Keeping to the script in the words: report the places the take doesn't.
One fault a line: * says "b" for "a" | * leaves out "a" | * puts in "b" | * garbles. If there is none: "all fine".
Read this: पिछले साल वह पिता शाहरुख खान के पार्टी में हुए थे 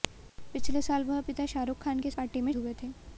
all fine